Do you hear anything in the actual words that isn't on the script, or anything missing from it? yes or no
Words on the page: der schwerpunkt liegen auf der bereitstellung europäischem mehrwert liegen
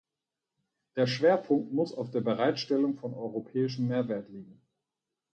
yes